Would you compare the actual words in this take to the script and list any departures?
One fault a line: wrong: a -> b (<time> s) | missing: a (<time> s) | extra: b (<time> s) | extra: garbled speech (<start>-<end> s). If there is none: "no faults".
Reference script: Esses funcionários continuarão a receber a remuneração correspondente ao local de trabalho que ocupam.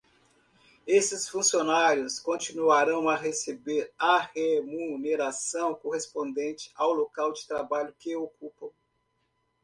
no faults